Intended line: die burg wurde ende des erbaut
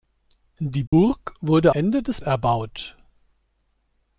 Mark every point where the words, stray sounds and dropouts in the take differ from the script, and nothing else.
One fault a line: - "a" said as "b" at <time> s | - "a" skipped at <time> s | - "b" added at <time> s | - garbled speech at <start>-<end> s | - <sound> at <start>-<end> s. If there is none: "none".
- dropout at 0.9-0.9 s